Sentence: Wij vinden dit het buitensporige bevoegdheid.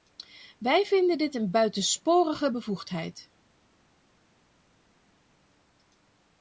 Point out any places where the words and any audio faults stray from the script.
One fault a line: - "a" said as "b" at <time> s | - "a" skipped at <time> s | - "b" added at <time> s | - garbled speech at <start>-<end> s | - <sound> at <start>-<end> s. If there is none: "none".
- "het" said as "een" at 1.4 s